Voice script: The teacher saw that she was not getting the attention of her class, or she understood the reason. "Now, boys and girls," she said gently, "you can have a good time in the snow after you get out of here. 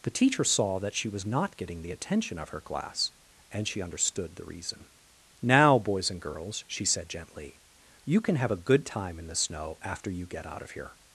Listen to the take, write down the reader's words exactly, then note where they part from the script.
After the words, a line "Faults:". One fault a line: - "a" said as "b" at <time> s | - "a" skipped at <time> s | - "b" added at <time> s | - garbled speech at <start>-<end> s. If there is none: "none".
The teacher saw that she was not getting the attention of her class, and she understood the reason. "Now, boys and girls," she said gently, "you can have a good time in the snow after you get out of here.
Faults:
- "or" said as "and" at 3.5 s